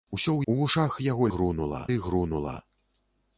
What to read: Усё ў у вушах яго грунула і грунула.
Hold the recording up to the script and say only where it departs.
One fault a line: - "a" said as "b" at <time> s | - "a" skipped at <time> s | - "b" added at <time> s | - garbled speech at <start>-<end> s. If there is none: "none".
none